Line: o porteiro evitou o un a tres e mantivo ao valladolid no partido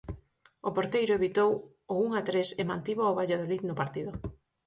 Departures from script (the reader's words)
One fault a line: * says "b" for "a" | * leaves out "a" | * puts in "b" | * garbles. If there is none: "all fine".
all fine